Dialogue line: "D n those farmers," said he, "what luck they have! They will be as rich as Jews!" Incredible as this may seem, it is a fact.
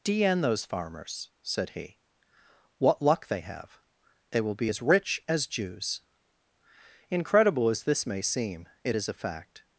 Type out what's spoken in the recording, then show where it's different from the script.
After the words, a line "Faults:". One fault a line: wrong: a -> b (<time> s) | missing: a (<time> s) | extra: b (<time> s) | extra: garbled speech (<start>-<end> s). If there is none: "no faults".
"D n those farmers," said he, "what luck they have! They will be as rich as Jews!" Incredible as this may seem, it is a fact.
Faults:
no faults